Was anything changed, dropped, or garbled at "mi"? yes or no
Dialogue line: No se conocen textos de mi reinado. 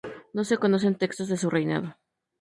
yes